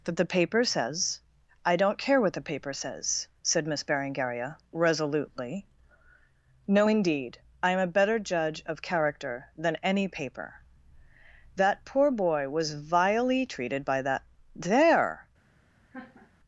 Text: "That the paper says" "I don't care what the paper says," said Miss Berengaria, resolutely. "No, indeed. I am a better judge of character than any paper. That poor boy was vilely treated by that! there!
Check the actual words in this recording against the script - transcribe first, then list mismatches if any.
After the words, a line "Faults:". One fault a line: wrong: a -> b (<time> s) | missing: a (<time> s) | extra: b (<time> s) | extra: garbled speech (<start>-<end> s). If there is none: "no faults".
"That the paper says" "I don't care what the paper says," said Miss Berengaria, resolutely. "No, indeed. I am a better judge of character than any paper. That poor boy was vilely treated by that! there!
Faults:
no faults